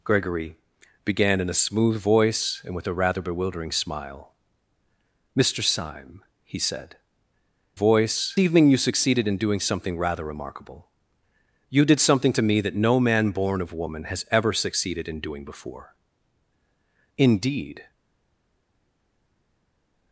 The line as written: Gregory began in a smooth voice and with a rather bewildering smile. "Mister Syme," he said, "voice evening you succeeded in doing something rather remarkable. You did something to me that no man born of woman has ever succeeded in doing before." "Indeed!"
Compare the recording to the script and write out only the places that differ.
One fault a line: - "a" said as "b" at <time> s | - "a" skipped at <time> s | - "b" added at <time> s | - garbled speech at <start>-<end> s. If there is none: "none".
none